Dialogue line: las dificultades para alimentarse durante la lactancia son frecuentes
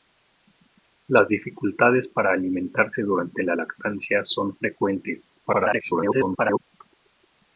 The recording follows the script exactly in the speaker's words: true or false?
false